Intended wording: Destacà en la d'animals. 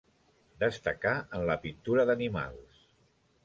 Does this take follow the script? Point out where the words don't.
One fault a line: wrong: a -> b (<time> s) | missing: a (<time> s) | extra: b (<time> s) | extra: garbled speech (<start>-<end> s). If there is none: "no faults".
extra: pintura (1.7 s)